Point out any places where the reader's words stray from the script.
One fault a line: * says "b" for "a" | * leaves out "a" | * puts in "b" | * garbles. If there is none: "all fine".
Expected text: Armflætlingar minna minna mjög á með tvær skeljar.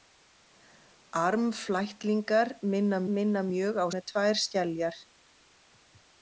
all fine